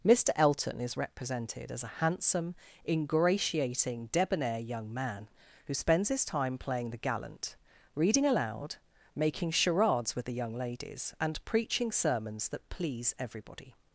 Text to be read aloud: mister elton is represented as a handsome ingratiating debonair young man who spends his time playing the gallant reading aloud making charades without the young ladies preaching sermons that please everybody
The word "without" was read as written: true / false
false